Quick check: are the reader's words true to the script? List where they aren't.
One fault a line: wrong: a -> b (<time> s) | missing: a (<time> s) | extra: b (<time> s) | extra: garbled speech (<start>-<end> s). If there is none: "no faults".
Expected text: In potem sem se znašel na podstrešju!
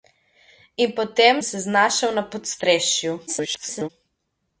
missing: sem (1.4 s)
extra: garbled speech (3.3-3.9 s)